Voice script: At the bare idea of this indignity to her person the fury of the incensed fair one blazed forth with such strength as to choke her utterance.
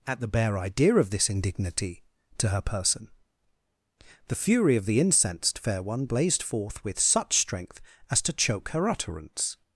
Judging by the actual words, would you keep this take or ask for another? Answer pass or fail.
pass